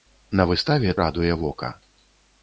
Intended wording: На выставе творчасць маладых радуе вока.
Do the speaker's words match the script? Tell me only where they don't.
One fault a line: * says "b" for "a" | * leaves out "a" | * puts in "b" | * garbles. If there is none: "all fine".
* leaves out "творчасць маладых"